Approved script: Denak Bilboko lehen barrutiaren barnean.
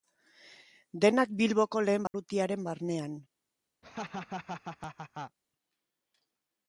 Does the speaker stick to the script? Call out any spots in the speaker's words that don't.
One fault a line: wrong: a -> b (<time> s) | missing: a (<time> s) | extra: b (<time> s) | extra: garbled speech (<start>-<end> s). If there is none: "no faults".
no faults